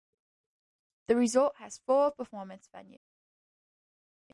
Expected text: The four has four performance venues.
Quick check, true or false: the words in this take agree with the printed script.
false